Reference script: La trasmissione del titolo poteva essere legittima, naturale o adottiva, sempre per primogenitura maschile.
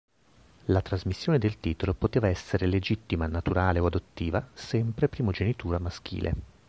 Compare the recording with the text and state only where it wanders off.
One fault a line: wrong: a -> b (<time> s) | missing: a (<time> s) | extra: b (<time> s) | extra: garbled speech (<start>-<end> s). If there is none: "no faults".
missing: per (5.1 s)